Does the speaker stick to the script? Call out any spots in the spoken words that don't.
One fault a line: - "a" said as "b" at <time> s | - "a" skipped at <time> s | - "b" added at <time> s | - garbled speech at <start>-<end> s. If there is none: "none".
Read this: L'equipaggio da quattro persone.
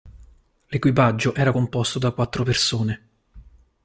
- "era composto" added at 1.3 s